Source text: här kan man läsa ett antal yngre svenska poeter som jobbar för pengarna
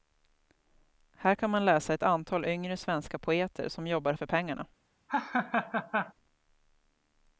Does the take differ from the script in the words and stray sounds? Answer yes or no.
yes